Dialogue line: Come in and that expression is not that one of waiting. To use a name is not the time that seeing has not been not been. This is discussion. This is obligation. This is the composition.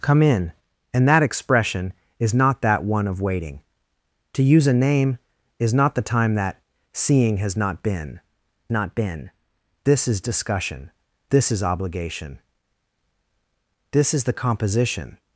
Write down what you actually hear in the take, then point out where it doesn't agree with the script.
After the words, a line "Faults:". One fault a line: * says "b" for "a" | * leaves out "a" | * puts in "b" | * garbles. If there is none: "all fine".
Come in and that expression is not that one of waiting. To use a name is not the time that seeing has not been not been. This is discussion. This is obligation. This is the composition.
Faults:
all fine